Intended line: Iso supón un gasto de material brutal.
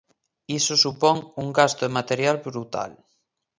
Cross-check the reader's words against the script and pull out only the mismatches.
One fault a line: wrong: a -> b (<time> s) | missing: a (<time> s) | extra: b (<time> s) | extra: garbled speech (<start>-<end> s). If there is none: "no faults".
no faults